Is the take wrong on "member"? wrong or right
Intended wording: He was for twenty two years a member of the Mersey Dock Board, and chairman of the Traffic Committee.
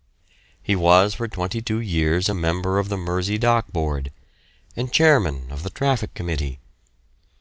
right